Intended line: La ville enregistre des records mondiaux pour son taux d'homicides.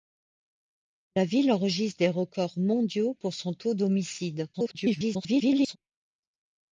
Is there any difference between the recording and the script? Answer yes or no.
yes